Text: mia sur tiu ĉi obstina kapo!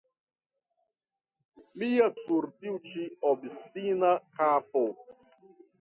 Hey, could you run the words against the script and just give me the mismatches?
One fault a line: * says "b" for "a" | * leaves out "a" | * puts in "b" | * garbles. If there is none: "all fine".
all fine